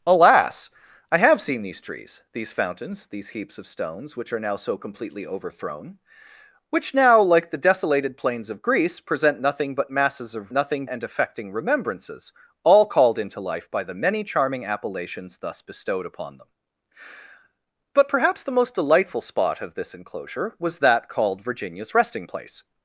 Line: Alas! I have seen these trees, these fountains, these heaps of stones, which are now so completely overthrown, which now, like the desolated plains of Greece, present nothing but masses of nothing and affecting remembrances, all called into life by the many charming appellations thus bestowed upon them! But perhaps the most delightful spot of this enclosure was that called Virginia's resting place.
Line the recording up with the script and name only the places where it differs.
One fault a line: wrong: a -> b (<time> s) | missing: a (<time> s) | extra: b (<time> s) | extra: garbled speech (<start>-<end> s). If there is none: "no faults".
no faults